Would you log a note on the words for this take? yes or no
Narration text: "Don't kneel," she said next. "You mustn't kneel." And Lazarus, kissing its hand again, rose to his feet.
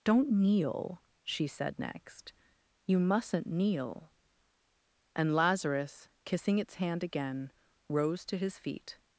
no